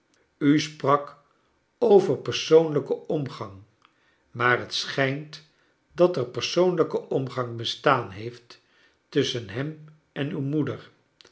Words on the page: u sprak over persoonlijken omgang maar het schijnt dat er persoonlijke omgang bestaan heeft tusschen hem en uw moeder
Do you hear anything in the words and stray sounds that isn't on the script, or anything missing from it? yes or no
no